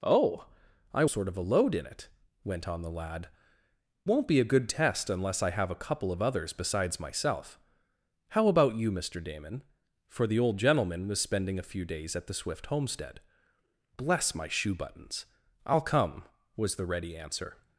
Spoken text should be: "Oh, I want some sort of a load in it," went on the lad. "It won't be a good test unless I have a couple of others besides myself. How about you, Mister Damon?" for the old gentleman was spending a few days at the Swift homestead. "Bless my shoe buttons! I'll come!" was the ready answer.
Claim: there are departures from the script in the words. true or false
true